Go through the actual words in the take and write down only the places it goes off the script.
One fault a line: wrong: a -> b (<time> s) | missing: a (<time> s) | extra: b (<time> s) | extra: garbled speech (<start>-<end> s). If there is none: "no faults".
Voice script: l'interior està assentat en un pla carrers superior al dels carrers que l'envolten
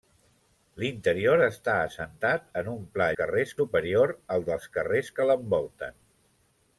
no faults